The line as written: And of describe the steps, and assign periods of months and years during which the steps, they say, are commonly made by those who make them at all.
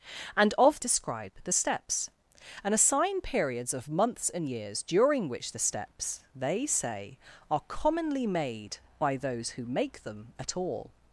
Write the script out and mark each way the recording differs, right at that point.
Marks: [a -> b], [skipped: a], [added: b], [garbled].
And of describe the steps, and assign periods of months and years during which the steps, they say, are commonly made by those who make them at all.